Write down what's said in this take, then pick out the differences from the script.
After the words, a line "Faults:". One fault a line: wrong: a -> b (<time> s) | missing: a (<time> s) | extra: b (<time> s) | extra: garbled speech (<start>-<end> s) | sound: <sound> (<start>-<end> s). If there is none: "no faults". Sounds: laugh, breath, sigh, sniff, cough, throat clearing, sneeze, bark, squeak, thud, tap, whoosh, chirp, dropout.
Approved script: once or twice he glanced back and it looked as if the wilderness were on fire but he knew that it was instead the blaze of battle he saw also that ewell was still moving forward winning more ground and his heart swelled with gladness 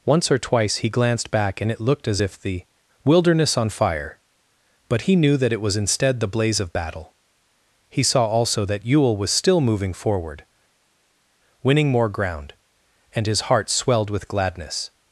once or twice he glanced back and it looked as if the wilderness on fire but he knew that it was instead the blaze of battle he saw also that ewell was still moving forward winning more ground and his heart swelled with gladness
Faults:
missing: were (3.6 s)